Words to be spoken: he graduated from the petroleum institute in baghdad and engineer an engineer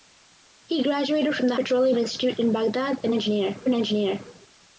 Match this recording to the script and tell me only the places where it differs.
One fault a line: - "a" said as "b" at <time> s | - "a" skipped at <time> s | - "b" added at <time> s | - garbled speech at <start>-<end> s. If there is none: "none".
none